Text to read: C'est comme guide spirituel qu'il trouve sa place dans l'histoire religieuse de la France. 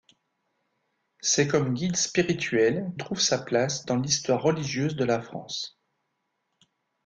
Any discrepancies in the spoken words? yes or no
yes